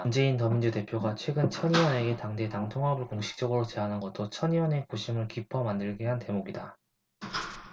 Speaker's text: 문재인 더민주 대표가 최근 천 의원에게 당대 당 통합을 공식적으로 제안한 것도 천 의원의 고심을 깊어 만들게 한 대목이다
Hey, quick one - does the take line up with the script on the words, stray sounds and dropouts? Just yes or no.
yes